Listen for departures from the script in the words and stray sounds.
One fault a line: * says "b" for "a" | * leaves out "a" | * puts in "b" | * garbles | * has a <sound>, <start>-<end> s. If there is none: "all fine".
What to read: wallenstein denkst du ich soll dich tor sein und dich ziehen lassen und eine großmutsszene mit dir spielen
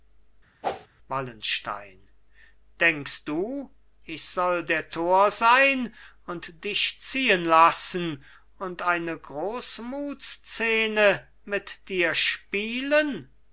* has a whoosh, 0.6-0.9 s
* says "der" for "dich"